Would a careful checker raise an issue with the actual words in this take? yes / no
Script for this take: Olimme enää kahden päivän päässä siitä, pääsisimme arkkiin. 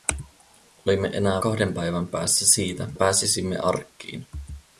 no